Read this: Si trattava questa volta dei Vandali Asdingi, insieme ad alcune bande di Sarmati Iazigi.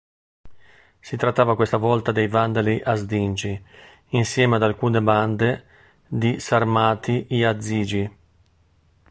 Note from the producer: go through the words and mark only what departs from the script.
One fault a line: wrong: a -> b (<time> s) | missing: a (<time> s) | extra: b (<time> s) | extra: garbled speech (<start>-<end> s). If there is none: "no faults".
no faults